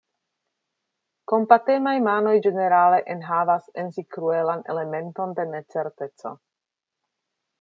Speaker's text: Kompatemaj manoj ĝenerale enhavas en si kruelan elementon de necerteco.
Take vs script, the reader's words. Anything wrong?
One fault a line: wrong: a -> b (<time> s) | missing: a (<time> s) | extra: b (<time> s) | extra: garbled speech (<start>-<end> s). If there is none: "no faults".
no faults